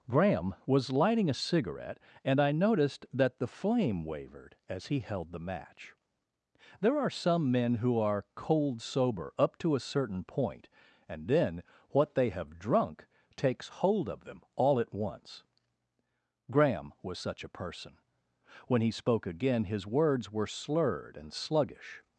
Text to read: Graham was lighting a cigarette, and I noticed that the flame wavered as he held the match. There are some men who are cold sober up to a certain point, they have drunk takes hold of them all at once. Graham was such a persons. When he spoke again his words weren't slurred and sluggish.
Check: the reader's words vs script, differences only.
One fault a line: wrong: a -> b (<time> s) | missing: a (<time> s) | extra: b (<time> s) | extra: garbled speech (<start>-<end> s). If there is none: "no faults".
extra: and then what (11.1 s)
wrong: persons -> person (17.5 s)
wrong: weren't -> were (20.3 s)